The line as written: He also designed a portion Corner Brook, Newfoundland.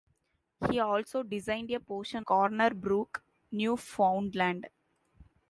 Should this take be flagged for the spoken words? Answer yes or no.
no